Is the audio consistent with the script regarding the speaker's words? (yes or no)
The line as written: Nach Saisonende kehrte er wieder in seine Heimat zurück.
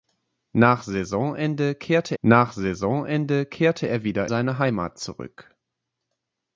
no